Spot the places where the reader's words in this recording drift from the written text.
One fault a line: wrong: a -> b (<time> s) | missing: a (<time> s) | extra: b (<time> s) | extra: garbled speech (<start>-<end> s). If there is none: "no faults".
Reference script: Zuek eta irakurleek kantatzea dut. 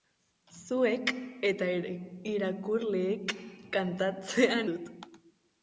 no faults